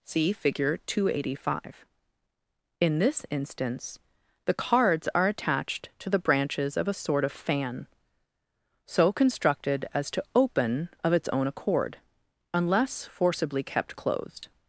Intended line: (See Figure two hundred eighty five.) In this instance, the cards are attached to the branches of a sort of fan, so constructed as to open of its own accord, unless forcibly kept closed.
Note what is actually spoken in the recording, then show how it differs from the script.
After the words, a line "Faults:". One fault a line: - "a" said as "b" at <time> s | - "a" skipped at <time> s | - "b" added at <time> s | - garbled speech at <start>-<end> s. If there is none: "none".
(See Figure two hundred eighty five.) In this instance, the cards are attached to the branches of a sort of fan, so constructed as to open of its own accord, unless forcibly kept closed.
Faults:
none